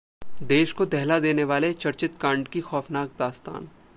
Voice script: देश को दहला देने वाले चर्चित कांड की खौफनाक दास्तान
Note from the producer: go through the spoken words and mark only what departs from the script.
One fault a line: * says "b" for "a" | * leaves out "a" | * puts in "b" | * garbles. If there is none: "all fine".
all fine